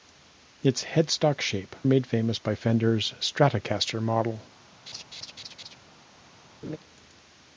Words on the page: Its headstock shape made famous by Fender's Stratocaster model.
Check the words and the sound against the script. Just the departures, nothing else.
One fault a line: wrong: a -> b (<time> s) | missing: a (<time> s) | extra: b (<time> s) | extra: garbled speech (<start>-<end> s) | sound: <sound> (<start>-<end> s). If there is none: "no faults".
sound: laugh (4.9-5.8 s)
sound: laugh (6.6-6.8 s)